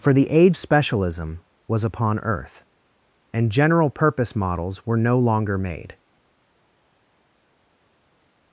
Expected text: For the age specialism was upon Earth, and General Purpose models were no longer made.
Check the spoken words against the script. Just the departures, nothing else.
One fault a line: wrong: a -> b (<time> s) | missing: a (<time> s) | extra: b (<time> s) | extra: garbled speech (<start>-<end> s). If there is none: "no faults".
no faults